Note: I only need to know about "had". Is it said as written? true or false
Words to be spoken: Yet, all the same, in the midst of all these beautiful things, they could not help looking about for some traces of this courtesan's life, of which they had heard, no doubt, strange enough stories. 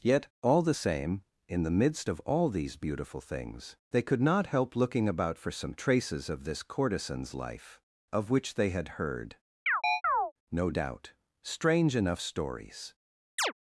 true